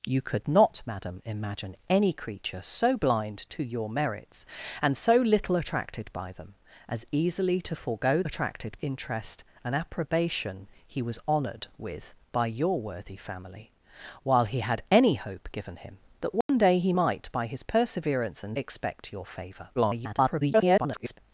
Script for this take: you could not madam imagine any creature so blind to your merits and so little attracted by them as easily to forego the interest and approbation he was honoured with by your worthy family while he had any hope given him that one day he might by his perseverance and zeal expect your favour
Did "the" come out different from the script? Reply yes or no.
yes